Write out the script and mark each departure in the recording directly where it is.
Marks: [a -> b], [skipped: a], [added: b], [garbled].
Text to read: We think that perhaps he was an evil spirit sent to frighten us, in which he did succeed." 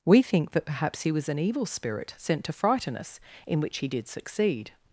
We think that perhaps he was an evil spirit sent to frighten us, in which he did succeed."